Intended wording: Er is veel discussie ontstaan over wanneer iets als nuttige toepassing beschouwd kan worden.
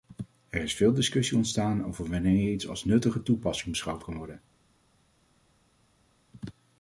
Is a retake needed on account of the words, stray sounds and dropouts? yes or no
no